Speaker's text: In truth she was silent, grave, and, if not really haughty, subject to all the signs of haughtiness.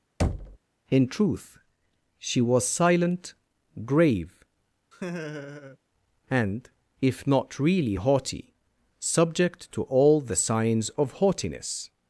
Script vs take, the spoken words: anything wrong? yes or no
no